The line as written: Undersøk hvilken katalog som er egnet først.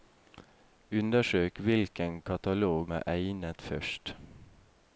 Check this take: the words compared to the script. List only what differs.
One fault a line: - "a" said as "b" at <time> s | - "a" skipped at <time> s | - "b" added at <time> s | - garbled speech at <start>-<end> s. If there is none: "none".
- "som" skipped at 2.9 s